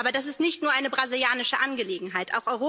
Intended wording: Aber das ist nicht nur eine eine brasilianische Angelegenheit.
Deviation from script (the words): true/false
true